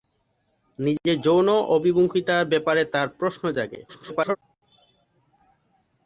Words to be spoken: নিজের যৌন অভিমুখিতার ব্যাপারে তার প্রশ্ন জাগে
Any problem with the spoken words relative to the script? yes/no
yes